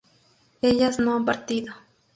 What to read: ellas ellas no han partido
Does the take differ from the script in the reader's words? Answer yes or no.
yes